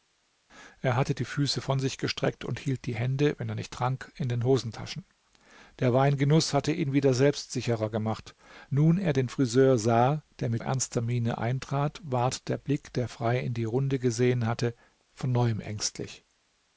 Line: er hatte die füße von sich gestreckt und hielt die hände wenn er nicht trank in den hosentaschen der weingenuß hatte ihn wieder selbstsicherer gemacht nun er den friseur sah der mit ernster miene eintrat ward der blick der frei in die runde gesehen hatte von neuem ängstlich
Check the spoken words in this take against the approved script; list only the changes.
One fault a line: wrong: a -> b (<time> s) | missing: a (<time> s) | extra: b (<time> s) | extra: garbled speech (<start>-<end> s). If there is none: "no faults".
no faults